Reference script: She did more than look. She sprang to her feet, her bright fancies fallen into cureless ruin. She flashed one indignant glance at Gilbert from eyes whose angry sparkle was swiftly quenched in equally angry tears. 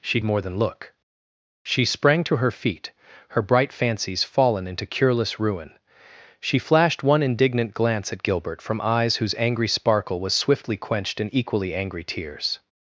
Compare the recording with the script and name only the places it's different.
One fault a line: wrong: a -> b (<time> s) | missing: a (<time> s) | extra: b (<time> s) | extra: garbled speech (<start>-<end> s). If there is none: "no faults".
missing: did (0.2 s)